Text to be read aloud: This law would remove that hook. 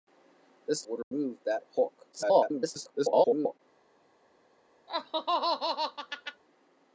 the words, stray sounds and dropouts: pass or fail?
fail